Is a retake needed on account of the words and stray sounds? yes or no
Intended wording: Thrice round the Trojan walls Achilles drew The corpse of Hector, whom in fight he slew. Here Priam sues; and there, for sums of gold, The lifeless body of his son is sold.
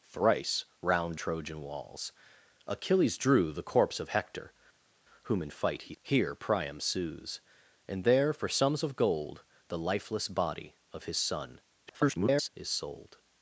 yes